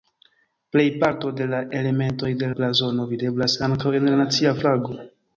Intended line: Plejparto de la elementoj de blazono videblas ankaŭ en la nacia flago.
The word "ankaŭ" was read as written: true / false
true